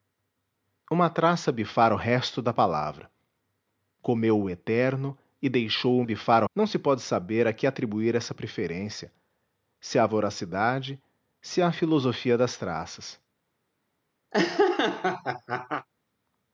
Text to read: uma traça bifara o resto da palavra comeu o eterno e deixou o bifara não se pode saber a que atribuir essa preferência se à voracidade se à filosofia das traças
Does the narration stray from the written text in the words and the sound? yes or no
yes